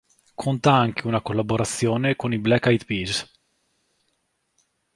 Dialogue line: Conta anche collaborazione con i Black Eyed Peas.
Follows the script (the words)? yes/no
no